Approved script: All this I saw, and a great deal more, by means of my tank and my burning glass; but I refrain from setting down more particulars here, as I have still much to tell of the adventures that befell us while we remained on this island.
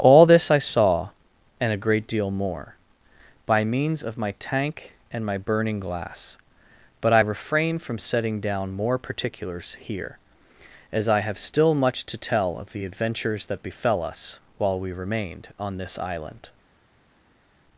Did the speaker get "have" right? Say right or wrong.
right